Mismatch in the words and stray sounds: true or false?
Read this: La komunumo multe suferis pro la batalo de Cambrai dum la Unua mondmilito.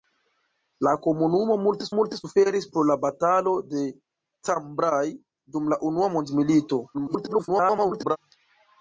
true